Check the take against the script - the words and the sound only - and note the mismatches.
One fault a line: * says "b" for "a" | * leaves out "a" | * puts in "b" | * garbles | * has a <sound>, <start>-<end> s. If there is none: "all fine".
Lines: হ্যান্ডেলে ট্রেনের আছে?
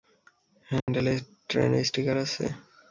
* has a dropout, 0.8-0.9 s
* puts in "স্টিকার"